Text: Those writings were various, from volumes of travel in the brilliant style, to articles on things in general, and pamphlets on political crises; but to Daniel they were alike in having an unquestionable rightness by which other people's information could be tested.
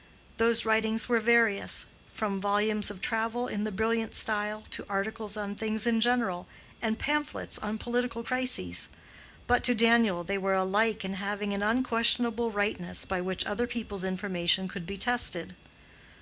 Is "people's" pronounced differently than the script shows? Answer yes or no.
no